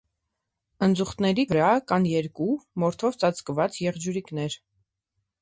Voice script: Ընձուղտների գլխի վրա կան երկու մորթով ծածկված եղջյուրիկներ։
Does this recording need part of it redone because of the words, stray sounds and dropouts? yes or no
yes